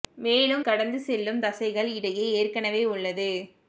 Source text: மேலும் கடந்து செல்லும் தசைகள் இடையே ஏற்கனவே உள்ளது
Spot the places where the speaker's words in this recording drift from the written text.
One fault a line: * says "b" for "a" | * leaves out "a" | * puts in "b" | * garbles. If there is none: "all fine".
all fine